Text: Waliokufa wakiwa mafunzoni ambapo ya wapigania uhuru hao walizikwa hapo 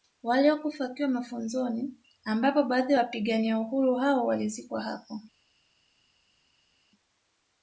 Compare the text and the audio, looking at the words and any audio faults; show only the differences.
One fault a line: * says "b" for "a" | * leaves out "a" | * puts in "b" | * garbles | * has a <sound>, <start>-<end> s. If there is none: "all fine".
* puts in "baadhi"